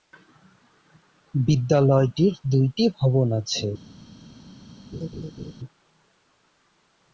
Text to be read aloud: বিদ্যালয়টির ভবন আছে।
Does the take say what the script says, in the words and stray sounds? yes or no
no